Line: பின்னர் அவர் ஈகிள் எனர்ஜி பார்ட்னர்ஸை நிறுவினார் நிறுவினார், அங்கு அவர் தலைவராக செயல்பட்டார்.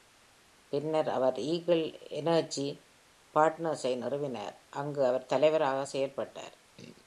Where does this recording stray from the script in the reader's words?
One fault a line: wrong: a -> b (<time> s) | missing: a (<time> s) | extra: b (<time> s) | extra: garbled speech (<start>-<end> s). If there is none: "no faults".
missing: நிறுவினார் (4.6 s)